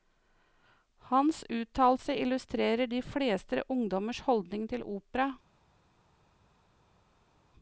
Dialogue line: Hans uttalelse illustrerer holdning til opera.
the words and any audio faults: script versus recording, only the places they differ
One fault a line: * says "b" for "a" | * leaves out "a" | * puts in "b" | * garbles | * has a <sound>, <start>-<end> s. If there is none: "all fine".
* puts in "de fleste ungdommers"